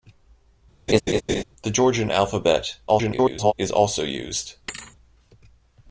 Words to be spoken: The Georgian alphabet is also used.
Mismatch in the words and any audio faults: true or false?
true